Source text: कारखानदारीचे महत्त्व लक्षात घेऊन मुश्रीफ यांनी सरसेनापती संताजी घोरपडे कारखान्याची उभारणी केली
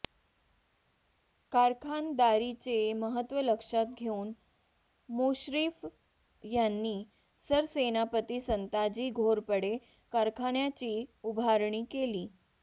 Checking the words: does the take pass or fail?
pass